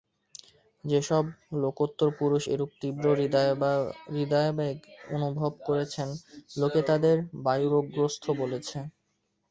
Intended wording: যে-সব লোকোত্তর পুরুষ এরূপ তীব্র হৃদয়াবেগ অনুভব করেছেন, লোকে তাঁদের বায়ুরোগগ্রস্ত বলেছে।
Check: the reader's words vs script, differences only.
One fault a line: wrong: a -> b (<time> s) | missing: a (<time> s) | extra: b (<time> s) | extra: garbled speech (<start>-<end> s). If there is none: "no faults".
no faults